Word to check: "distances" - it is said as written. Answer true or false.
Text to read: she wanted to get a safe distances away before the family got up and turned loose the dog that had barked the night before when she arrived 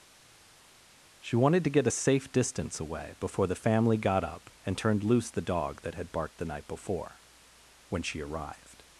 false